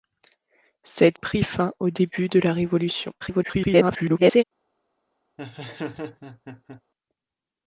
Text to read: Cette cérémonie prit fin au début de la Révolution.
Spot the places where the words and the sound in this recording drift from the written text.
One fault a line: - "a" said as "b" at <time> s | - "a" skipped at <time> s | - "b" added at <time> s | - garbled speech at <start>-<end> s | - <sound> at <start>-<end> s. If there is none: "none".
- "cérémonie" skipped at 1.2 s
- garbled speech at 3.2-4.4 s
- laugh at 5.4-6.8 s